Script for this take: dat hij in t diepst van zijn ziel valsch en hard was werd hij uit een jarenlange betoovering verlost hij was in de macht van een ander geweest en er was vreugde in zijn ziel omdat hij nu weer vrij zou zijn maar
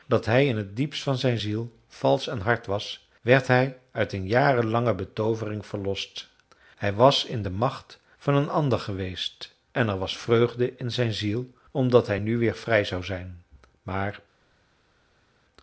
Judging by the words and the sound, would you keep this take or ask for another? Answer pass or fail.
pass